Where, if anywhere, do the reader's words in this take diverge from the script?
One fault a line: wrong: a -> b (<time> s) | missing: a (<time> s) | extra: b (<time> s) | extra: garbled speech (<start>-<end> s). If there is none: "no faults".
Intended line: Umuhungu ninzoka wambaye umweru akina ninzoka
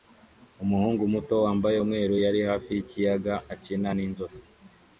wrong: ninzoka -> muto (1.1 s)
extra: yari hafi yikiyaga (2.2 s)